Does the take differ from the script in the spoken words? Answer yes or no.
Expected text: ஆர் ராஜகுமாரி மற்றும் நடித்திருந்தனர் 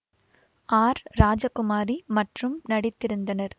no